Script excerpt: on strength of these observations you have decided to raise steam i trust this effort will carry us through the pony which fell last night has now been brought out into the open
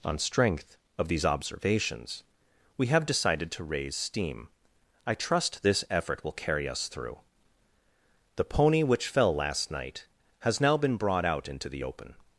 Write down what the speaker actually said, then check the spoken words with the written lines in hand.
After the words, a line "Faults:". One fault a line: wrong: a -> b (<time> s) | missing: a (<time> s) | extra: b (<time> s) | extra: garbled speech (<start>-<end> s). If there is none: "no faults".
on strength of these observations we have decided to raise steam i trust this effort will carry us through the pony which fell last night has now been brought out into the open
Faults:
wrong: you -> we (2.8 s)